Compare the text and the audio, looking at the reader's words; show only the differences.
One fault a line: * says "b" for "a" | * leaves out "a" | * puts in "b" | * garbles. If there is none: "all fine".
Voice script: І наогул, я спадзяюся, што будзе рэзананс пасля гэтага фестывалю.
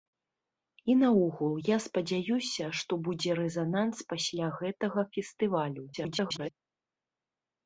* garbles